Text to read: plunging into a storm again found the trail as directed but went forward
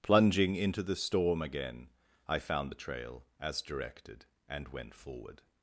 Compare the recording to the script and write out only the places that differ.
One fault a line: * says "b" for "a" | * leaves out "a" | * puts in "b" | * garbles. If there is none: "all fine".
* says "the" for "a"
* puts in "i"
* says "and" for "but"